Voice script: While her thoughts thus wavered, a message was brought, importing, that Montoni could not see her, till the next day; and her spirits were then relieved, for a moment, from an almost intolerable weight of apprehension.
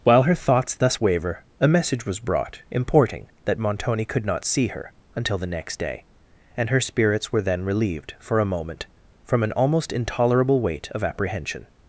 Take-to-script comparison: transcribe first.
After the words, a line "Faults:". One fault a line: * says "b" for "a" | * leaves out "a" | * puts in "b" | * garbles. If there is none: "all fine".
While her thoughts thus waver, a message was brought, importing, that Montoni could not see her, until the next day; and her spirits were then relieved, for a moment, from an almost intolerable weight of apprehension.
Faults:
* says "waver" for "wavered"
* says "until" for "till"